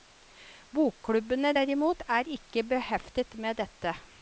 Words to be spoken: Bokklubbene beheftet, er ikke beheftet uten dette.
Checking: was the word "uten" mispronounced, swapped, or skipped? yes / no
yes